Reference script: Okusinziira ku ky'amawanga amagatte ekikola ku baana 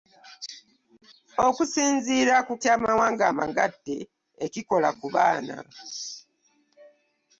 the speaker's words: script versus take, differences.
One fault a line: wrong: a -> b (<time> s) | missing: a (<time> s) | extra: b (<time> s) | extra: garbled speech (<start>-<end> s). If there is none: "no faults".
no faults